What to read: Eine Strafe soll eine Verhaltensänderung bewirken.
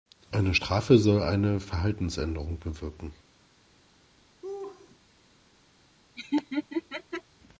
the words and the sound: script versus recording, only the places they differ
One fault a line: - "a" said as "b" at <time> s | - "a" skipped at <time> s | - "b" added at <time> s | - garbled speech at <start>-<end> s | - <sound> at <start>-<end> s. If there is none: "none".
- laugh at 4.4-5.0 s
- laugh at 6.2-7.2 s